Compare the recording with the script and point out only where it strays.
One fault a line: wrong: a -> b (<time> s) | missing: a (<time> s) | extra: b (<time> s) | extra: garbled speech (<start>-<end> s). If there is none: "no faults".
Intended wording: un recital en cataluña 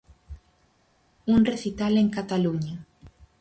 no faults